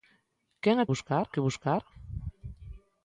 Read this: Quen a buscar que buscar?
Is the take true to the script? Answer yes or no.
yes